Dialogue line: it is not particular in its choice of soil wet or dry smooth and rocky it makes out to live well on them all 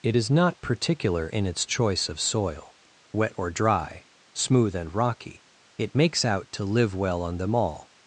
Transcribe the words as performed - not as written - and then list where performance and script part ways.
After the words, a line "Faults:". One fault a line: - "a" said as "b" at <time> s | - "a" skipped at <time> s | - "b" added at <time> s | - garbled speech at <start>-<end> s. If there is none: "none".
it is not particular in its choice of soil wet or dry smooth and rocky it makes out to live well on them all
Faults:
none